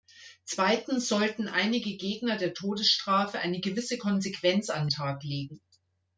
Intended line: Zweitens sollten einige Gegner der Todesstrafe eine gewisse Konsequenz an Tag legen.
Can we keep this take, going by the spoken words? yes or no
yes